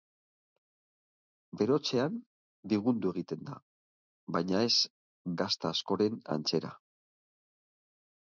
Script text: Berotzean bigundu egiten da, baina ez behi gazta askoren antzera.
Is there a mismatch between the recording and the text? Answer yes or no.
yes